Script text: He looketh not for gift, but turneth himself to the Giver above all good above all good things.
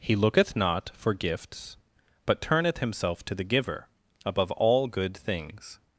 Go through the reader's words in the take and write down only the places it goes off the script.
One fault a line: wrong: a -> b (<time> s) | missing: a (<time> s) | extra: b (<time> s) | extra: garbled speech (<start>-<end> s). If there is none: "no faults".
wrong: gift -> gifts (1.1 s)
missing: above all good (5.2 s)